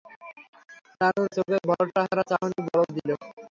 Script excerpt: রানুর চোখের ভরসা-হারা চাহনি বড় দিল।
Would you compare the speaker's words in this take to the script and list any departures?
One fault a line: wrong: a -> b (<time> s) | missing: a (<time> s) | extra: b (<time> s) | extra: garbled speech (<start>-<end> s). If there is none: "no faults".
no faults